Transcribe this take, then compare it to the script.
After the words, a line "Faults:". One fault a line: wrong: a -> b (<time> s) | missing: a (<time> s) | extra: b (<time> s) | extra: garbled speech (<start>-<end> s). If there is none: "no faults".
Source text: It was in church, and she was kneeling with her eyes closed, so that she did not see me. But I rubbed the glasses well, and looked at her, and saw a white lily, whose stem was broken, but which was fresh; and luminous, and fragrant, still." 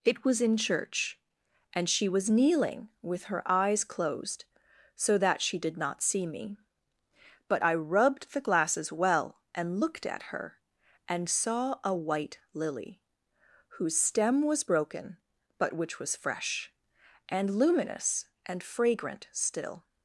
It was in church, and she was kneeling with her eyes closed, so that she did not see me. But I rubbed the glasses well, and looked at her, and saw a white lily, whose stem was broken, but which was fresh; and luminous, and fragrant, still."
Faults:
no faults